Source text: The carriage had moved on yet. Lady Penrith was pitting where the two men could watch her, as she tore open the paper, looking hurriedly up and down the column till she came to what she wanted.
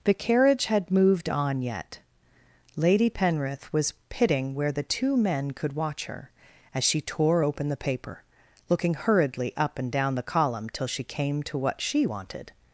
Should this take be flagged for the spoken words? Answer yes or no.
no